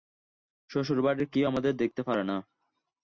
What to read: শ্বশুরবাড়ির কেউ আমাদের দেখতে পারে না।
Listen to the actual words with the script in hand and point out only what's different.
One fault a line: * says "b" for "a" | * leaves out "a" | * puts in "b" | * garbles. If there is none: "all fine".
all fine